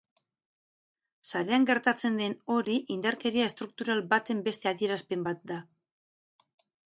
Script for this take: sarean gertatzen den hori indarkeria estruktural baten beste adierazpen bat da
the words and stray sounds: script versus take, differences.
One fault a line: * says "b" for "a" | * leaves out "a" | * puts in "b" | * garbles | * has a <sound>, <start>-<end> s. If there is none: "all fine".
all fine